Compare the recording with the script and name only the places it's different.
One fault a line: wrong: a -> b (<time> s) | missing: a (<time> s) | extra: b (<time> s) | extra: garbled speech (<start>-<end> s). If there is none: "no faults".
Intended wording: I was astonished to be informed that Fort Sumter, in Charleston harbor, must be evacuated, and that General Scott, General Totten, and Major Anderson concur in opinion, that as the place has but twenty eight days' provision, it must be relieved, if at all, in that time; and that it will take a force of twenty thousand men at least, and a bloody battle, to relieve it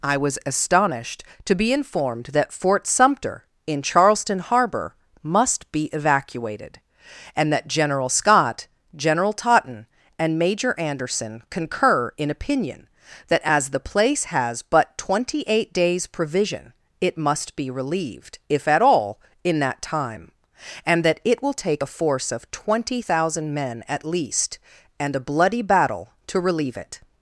no faults